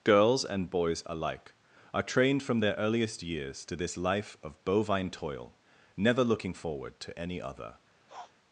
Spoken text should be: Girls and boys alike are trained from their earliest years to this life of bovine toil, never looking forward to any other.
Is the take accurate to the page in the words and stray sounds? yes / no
no